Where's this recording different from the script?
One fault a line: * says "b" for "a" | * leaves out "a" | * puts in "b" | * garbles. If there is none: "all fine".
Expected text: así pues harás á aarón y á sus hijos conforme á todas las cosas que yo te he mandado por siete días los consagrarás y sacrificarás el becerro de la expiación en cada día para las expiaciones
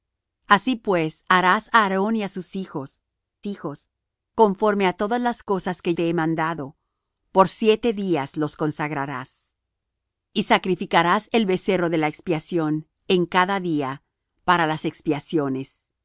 * puts in "hijos"
* leaves out "yo"